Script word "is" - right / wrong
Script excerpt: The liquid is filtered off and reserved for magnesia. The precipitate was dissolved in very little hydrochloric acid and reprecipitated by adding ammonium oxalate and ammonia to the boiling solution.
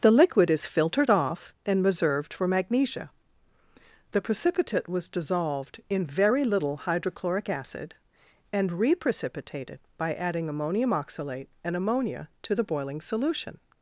right